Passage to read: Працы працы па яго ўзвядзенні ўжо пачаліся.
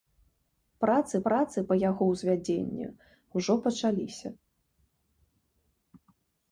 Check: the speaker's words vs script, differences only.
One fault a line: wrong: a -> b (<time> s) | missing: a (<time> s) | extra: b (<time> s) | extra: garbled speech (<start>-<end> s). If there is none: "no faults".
no faults